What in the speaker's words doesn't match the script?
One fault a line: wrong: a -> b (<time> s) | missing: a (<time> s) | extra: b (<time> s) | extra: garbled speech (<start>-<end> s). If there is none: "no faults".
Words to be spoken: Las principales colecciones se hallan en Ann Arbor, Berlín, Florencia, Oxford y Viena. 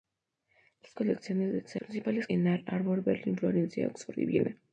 missing: principales (0.9 s)
wrong: hallan -> principales (1.8 s)